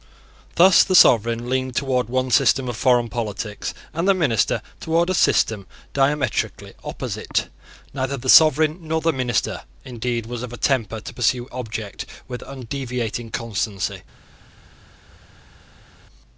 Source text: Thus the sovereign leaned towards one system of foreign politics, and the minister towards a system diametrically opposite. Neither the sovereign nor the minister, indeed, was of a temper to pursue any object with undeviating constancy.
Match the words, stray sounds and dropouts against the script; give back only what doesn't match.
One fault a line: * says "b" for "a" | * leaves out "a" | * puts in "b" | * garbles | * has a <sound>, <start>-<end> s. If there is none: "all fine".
* leaves out "any"